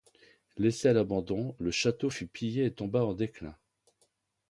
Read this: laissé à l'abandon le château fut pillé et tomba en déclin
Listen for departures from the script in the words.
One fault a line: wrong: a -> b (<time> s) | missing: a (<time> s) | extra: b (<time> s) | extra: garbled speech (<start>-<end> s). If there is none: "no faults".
no faults